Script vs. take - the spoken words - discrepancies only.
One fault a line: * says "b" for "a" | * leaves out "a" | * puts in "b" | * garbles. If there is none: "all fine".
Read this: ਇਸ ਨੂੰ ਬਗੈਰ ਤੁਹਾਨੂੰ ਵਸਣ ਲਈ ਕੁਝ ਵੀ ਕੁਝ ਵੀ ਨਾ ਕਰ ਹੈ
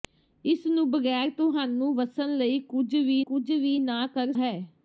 all fine